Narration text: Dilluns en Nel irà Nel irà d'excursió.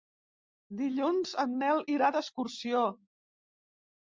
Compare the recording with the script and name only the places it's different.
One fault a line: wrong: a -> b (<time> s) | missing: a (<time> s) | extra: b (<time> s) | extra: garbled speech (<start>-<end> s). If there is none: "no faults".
missing: Nel irà (2.1 s)